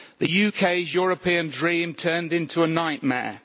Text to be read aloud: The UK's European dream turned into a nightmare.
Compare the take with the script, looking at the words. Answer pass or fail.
pass